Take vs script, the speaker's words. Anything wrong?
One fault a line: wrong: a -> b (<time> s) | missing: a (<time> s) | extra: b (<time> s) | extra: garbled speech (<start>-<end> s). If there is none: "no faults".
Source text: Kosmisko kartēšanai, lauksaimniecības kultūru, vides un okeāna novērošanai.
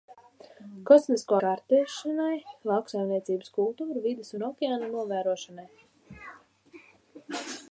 no faults